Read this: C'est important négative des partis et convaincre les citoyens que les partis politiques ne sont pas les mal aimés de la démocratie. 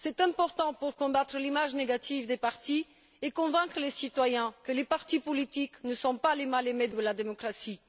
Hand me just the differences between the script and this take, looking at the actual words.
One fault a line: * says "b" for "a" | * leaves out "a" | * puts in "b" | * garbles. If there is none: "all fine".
* puts in "pour combattre l'image"